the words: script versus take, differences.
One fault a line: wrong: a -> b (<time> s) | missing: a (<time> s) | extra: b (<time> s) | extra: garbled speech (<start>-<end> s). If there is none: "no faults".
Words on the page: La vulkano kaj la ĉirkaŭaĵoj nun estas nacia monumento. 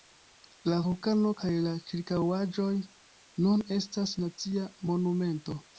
no faults